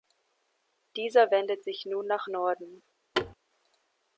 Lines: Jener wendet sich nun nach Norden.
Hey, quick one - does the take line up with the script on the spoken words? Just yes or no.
no